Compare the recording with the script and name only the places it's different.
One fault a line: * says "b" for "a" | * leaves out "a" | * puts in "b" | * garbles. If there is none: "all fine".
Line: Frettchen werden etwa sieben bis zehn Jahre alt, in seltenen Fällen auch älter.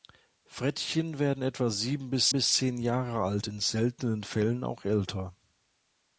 * puts in "bis"